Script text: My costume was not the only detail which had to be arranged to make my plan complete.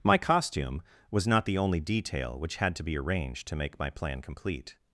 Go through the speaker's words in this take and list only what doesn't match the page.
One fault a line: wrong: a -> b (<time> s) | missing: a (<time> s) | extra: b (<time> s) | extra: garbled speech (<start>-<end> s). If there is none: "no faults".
no faults